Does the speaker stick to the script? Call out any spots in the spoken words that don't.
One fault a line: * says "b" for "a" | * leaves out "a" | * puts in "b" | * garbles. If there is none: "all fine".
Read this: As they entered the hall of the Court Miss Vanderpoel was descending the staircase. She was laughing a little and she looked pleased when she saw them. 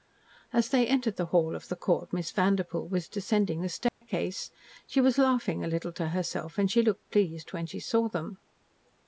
* puts in "to herself"